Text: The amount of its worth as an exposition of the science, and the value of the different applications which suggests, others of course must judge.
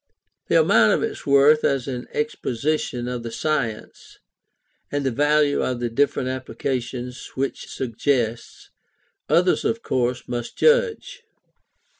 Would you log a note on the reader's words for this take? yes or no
no